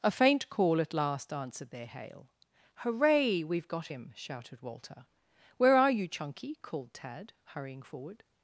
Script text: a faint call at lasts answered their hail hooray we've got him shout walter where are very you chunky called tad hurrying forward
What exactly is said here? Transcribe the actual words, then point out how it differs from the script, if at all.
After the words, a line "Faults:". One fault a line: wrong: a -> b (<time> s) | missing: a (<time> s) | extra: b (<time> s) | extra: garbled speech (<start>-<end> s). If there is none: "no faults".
a faint call at last answered their hail hooray we've got him shouted walter where are you chunky called tad hurrying forward
Faults:
wrong: lasts -> last (0.9 s)
wrong: shout -> shouted (4.1 s)
missing: very (5.9 s)